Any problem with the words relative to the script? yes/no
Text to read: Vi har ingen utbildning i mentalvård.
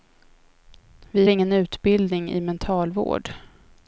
yes